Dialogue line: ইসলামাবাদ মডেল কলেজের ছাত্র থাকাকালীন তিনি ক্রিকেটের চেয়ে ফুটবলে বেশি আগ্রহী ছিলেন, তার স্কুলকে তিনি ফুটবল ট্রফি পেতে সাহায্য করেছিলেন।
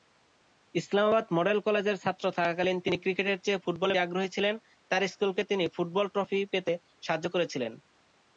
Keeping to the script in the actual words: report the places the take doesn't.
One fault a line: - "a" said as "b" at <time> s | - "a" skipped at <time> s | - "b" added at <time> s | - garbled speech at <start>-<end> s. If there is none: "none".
- "বেশি" skipped at 4.0 s